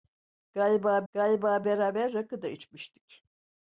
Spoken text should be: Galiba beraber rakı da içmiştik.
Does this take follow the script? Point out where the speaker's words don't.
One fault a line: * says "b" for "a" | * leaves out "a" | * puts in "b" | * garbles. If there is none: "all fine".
* puts in "galiba"